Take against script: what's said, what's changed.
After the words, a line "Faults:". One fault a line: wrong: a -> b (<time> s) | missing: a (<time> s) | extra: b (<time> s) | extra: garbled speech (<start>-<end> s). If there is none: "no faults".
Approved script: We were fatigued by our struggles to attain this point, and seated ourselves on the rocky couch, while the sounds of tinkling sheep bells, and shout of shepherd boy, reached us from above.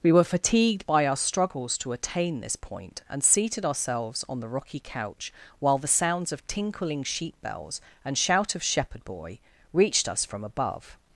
We were fatigued by our struggles to attain this point, and seated ourselves on the rocky couch, while the sounds of tinkling sheep bells, and shout of shepherd boy, reached us from above.
Faults:
no faults